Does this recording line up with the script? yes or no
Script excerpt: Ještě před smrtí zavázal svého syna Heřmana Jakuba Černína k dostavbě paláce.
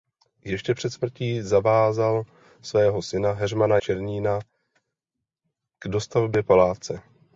no